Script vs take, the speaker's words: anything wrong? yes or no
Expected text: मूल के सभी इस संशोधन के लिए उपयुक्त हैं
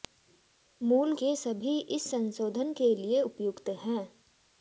no